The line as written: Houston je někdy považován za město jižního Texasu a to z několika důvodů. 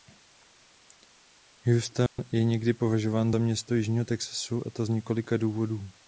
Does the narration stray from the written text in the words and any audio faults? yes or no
yes